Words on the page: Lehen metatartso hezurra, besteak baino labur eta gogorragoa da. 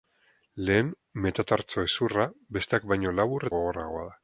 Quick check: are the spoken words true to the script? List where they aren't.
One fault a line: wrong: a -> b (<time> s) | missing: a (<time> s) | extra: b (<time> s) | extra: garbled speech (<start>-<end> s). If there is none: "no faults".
missing: eta (3.5 s)